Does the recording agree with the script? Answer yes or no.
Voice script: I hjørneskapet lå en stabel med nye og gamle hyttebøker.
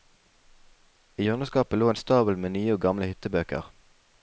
yes